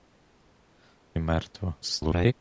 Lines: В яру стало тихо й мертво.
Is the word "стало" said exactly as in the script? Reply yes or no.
no